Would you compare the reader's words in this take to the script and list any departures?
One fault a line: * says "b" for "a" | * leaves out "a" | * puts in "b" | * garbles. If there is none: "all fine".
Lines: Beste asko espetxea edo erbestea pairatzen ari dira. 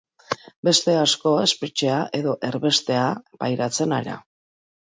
* leaves out "ari"